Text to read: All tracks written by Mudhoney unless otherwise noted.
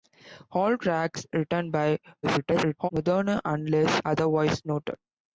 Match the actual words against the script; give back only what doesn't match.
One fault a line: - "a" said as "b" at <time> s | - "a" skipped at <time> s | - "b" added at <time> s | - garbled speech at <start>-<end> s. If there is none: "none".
- garbled speech at 2.2-2.9 s